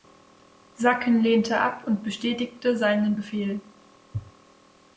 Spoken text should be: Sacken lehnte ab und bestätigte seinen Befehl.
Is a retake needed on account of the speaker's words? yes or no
no